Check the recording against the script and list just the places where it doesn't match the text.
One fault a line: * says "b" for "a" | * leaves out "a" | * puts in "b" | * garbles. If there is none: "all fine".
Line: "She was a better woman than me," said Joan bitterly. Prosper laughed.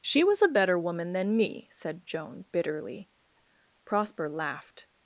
all fine